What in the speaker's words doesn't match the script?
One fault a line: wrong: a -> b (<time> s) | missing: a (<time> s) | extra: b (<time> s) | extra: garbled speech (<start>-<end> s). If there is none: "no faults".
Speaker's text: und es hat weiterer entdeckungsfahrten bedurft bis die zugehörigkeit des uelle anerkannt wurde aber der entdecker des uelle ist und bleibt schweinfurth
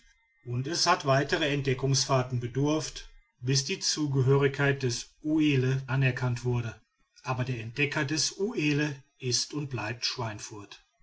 no faults